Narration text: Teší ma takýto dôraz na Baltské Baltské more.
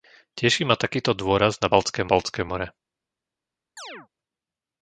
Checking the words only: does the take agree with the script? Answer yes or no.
yes